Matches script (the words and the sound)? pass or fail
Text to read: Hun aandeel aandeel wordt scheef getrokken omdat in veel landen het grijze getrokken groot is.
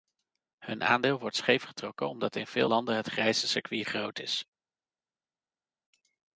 fail